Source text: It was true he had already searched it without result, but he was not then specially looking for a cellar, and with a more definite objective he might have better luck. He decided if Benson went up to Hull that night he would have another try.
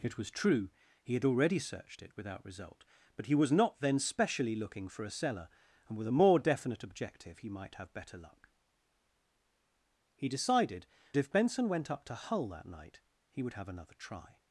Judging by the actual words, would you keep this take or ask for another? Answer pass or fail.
pass